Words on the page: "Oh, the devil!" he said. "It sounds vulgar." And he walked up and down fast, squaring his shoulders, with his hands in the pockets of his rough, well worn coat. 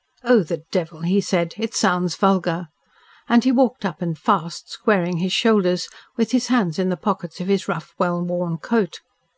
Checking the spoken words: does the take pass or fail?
fail